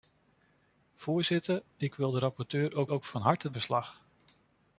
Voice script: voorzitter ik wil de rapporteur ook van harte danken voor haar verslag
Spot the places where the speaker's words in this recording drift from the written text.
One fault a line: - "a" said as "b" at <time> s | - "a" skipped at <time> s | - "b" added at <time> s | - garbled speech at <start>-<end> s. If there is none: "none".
- "ook" added at 2.9 s
- "danken voor haar" skipped at 3.5 s